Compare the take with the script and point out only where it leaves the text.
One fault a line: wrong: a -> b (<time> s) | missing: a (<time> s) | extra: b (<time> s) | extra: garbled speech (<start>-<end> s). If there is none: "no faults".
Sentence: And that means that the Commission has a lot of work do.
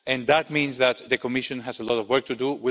extra: to (2.3 s)